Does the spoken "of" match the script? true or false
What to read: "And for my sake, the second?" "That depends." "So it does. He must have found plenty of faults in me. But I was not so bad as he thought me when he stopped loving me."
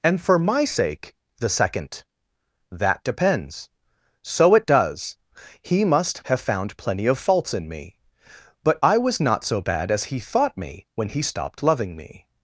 true